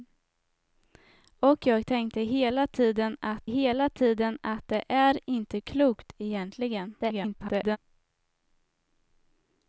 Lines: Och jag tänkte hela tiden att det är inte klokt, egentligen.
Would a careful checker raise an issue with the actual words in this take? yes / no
yes